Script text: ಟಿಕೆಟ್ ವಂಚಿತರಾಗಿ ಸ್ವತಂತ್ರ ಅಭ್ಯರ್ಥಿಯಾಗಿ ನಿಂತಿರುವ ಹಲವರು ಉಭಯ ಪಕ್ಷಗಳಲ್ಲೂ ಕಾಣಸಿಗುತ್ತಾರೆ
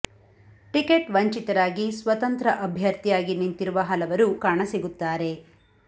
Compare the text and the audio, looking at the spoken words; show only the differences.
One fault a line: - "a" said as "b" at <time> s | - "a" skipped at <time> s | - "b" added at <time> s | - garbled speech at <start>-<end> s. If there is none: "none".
- "ಉಭಯ ಪಕ್ಷಗಳಲ್ಲೂ" skipped at 4.3 s